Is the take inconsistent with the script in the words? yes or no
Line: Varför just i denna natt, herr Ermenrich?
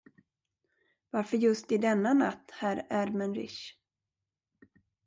no